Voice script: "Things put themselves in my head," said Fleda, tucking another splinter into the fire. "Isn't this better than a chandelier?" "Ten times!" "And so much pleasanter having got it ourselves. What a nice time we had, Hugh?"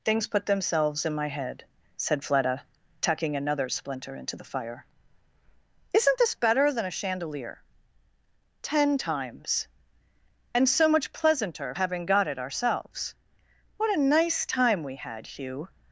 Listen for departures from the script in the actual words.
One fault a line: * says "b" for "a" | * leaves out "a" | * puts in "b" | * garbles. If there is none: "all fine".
all fine